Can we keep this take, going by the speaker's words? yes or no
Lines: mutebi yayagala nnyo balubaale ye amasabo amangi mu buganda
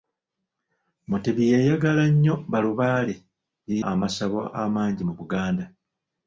yes